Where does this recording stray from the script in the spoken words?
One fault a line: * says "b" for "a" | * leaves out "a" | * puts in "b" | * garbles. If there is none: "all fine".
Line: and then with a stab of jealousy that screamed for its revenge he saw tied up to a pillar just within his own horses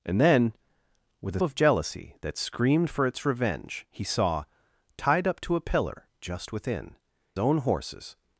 * leaves out "stab"
* leaves out "his"